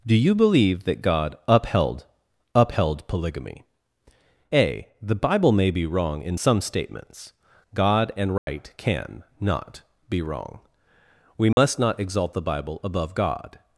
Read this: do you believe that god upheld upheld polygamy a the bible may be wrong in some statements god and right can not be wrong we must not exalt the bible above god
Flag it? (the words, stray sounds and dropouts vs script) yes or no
yes